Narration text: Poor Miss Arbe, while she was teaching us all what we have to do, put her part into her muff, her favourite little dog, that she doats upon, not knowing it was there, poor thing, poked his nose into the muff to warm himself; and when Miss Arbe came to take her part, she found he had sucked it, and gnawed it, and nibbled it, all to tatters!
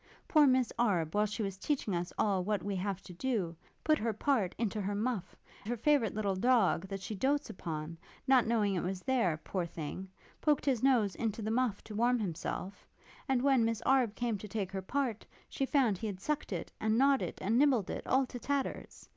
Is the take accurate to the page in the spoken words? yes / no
yes